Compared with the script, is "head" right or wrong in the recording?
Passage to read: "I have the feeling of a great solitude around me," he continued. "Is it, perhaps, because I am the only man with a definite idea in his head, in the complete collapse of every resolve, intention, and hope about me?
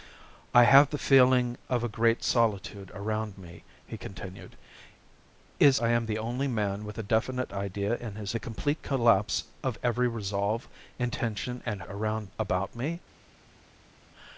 wrong